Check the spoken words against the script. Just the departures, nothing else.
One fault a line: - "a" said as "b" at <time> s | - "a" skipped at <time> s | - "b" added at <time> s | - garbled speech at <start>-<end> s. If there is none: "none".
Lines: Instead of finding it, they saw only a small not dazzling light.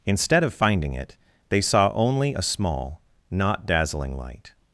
none